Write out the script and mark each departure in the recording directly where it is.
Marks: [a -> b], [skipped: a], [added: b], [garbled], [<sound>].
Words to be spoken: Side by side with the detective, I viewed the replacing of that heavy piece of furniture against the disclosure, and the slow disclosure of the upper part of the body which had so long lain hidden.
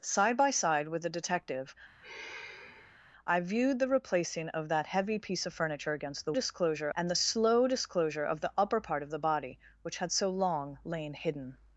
Side by side with the detective, [sigh] I viewed the replacing of that heavy piece of furniture against the disclosure, and the slow disclosure of the upper part of the body which had so long lain hidden.